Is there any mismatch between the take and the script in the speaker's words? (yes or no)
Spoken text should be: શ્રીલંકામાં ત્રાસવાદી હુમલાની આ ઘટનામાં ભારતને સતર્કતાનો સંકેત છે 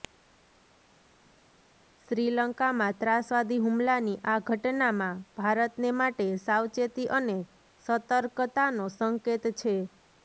yes